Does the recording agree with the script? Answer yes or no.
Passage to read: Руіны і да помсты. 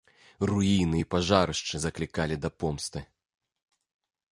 no